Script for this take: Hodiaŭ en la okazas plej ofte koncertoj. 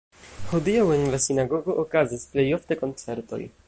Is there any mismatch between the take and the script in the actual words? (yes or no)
yes